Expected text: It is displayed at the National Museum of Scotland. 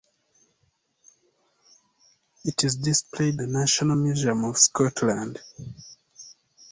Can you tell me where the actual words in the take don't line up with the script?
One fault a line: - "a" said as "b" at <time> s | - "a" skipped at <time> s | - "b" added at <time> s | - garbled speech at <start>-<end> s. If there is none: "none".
- "at" skipped at 3.4 s